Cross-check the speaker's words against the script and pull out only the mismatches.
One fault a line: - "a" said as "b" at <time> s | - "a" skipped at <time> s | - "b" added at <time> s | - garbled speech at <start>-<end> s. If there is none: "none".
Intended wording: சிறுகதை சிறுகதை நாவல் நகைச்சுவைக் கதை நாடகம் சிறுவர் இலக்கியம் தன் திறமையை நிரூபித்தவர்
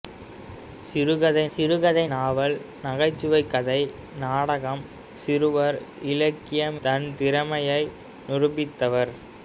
none